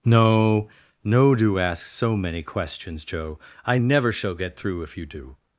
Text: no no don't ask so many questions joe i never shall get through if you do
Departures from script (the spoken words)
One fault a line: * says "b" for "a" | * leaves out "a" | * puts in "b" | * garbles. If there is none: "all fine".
* says "do" for "don't"